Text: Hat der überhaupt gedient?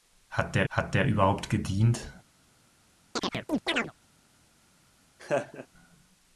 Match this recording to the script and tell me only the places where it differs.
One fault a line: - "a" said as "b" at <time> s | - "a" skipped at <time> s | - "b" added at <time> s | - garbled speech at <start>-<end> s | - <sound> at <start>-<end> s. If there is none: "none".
- "hat der" added at 0.7 s
- chirp at 3.2-3.9 s
- laugh at 5.2-5.7 s